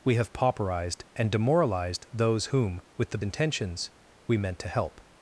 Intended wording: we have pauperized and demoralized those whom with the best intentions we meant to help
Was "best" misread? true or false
true